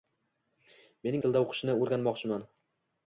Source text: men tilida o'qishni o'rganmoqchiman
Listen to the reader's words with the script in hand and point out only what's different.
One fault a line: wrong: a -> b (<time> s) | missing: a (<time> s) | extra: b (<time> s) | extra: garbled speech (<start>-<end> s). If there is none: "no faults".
no faults